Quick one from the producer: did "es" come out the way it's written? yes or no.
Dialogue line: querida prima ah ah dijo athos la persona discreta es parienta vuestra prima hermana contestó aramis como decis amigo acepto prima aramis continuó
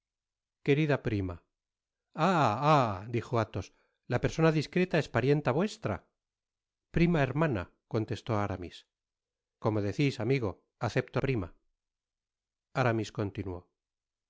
yes